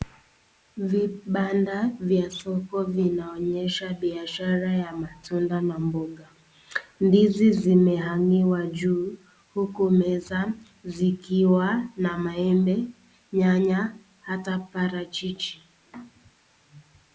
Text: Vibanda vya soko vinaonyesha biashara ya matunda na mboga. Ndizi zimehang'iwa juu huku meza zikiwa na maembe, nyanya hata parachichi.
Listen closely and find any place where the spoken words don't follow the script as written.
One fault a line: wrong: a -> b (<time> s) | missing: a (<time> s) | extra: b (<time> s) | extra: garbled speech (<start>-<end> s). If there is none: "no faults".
no faults